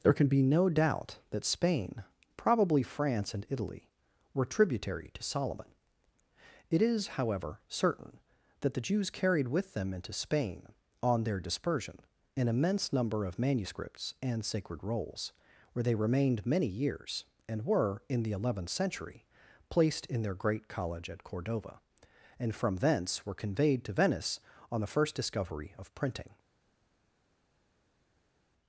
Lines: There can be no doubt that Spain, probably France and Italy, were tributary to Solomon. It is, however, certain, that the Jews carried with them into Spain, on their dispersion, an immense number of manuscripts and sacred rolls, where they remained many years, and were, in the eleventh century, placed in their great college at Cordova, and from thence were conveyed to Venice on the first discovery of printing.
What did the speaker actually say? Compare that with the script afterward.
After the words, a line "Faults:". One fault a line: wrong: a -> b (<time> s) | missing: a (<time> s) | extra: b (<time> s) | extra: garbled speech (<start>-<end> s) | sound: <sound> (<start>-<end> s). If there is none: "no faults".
There can be no doubt that Spain, probably France and Italy, were tributary to Solomon. It is, however, certain, that the Jews carried with them into Spain, on their dispersion, an immense number of manuscripts and sacred rolls, where they remained many years, and were, in the eleventh century, placed in their great college at Cordova, and from thence were conveyed to Venice on the first discovery of printing.
Faults:
no faults